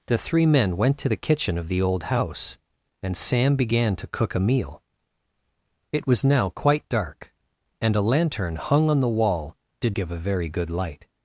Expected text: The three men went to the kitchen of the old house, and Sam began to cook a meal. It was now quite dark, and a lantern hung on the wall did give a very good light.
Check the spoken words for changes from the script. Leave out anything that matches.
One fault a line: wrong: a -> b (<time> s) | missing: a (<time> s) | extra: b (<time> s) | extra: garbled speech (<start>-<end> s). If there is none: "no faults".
no faults